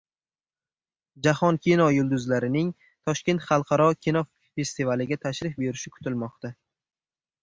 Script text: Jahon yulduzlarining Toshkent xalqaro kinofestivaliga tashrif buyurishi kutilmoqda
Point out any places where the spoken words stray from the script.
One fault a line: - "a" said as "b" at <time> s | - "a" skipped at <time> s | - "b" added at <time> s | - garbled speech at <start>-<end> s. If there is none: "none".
- "kino" added at 1.6 s